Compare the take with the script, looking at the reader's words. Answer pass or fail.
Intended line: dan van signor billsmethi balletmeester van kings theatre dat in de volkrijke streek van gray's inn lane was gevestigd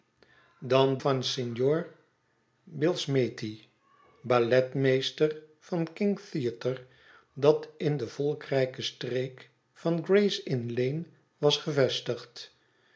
pass